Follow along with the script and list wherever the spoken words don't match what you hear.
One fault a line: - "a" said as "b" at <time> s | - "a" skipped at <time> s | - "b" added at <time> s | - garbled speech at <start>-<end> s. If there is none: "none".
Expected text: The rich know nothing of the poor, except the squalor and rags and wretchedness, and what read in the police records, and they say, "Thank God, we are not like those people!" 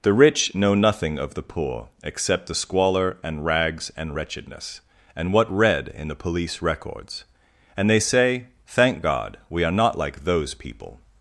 none